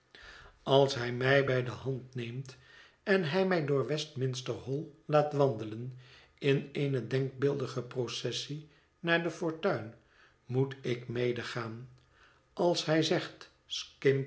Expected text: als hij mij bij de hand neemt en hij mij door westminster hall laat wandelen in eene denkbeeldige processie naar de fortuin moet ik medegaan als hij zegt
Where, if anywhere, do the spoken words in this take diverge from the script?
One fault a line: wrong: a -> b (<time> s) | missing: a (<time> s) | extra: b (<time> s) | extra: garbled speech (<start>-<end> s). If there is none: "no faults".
no faults